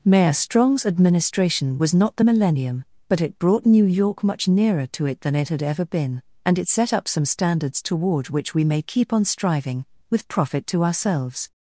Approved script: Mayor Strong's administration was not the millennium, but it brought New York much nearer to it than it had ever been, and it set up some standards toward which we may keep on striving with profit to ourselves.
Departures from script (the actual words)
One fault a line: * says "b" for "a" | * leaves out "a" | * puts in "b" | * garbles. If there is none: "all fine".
all fine